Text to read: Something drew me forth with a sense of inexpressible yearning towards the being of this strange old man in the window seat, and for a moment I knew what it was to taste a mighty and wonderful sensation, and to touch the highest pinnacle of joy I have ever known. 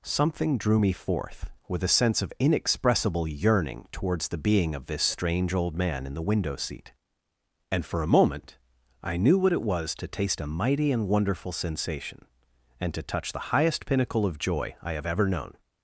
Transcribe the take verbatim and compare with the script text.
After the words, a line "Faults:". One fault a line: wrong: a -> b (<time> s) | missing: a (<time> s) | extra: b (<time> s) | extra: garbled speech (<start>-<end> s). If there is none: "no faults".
Something drew me forth with a sense of inexpressible yearning towards the being of this strange old man in the window seat, and for a moment I knew what it was to taste a mighty and wonderful sensation, and to touch the highest pinnacle of joy I have ever known.
Faults:
no faults